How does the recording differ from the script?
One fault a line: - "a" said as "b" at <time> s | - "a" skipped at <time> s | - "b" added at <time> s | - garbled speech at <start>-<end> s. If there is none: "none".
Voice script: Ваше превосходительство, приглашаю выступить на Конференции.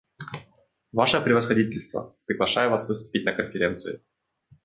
- "вас" added at 2.7 s